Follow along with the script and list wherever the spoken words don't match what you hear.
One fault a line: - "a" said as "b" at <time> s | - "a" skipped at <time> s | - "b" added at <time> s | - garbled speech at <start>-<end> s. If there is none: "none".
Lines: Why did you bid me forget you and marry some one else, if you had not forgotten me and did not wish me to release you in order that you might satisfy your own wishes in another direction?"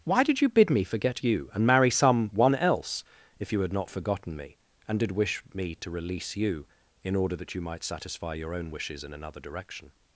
- "not" skipped at 5.1 s